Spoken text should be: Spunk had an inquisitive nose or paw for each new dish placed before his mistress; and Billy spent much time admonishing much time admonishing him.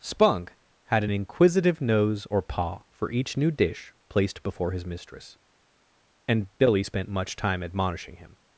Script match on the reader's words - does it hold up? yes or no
no